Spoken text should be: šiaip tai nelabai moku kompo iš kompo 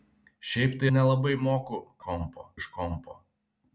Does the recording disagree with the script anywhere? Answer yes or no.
no